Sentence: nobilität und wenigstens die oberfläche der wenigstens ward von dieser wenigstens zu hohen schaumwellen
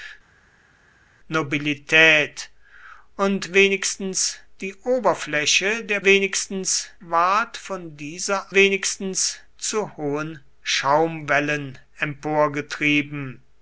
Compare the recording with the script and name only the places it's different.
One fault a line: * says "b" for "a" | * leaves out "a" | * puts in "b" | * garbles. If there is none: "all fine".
all fine